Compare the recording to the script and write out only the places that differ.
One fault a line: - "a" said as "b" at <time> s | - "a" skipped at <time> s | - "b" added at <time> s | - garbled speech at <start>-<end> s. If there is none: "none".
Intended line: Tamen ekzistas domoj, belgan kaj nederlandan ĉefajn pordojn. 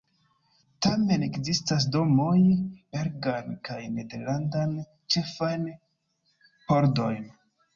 none